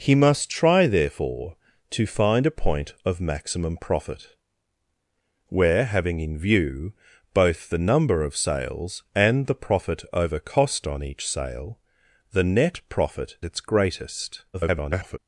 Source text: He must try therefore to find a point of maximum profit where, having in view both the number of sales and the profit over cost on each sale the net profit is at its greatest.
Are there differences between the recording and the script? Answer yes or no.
yes